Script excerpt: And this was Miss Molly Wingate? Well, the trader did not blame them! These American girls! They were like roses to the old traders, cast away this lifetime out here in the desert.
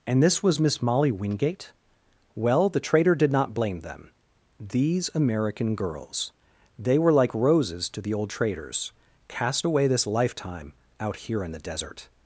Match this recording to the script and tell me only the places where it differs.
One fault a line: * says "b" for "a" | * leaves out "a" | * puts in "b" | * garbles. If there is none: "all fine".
all fine